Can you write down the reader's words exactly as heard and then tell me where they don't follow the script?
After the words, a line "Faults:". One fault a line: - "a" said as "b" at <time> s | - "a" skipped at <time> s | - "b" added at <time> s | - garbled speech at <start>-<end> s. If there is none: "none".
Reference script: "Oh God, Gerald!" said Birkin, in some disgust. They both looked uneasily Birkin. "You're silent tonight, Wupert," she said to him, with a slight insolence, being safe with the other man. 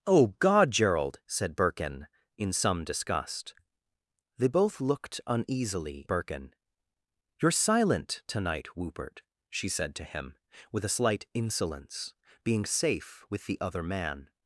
"Oh God, Gerald!" said Birkin, in some disgust. They both looked uneasily Birkin. "You're silent tonight, Wupert," she said to him, with a slight insolence, being safe with the other man.
Faults:
none